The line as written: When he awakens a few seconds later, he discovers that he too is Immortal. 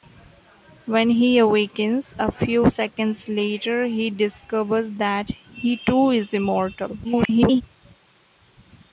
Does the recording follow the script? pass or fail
fail